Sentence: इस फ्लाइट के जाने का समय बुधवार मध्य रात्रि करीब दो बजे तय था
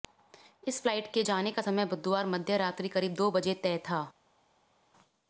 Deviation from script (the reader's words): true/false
false